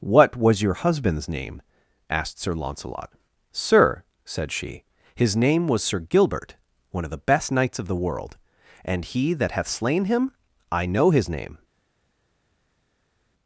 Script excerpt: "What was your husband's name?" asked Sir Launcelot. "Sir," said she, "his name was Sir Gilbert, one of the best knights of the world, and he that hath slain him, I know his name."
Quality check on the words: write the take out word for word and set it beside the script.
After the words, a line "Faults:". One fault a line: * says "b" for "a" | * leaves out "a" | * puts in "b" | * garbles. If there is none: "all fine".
"What was your husband's name?" asked Sir Launcelot. "Sir," said she, "his name was Sir Gilbert, one of the best knights of the world, and he that hath slain him, I know his name."
Faults:
all fine